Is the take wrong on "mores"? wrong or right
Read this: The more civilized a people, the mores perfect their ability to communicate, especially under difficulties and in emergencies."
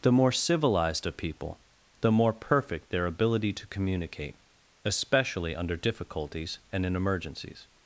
wrong